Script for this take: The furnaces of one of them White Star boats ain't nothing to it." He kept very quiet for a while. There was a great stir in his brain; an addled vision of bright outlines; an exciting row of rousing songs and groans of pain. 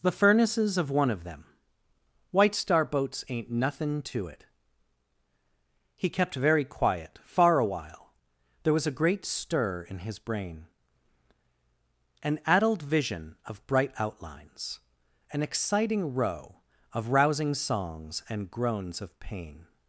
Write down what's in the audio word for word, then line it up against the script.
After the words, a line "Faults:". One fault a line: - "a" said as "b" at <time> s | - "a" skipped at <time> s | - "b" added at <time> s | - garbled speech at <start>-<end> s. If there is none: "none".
The furnaces of one of them White Star boats ain't nothing to it." He kept very quiet far a while. There was a great stir in his brain; an addled vision of bright outlines; an exciting row of rousing songs and groans of pain.
Faults:
- "for" said as "far" at 7.2 s